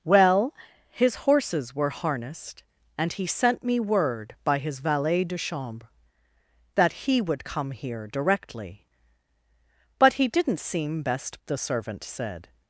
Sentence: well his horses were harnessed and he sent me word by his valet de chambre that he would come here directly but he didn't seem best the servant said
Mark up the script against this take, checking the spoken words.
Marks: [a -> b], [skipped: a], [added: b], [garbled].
well his horses were harnessed and he sent me word by his valet de chambre that he would come here directly but he didn't seem best the servant said